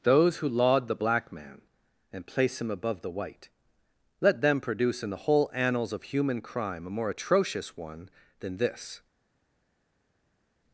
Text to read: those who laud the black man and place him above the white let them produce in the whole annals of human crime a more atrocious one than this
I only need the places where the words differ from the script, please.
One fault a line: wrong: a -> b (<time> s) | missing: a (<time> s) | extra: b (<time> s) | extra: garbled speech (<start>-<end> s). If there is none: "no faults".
no faults